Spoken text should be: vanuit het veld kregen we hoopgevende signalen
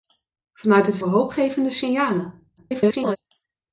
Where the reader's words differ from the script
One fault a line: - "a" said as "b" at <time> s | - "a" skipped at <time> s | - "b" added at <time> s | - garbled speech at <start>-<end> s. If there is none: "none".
- "veld kregen" skipped at 1.0 s
- garbled speech at 2.6-3.2 s